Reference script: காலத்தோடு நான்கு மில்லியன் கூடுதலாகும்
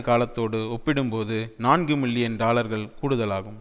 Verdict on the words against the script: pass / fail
fail